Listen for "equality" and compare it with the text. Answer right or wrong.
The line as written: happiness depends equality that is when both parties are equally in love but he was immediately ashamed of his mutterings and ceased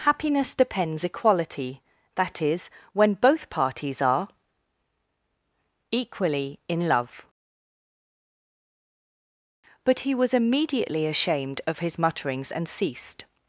right